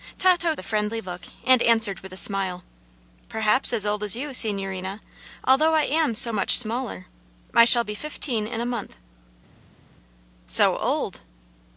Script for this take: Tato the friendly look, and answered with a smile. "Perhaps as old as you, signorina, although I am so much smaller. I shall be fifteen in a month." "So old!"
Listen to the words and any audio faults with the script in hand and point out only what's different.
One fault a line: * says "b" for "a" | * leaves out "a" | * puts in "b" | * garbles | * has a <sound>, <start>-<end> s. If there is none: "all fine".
all fine